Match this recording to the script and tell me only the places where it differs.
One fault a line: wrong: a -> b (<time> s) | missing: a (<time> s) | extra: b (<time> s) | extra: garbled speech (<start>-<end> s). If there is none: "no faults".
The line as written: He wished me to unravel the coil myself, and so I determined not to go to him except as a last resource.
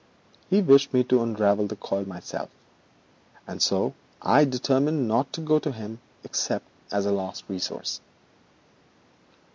no faults